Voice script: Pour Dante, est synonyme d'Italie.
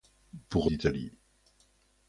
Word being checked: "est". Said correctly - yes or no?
no